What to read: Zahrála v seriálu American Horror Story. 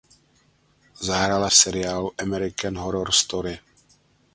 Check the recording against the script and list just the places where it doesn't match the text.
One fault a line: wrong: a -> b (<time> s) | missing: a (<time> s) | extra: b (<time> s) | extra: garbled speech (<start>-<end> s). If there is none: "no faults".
no faults